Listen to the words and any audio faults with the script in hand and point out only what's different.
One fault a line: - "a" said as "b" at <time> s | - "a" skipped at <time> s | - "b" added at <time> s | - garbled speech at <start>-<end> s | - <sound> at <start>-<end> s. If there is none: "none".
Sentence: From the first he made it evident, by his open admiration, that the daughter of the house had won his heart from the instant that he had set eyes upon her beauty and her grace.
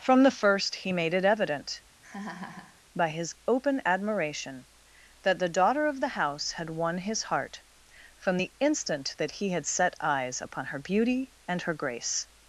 - laugh at 2.0-2.8 s